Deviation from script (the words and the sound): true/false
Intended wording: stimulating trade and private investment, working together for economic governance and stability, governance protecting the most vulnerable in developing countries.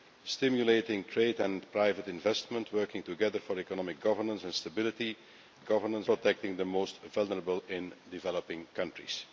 false